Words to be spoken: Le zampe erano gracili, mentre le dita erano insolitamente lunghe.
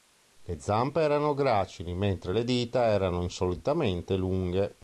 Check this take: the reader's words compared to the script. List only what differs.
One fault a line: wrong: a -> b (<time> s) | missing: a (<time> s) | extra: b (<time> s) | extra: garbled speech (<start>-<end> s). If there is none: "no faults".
no faults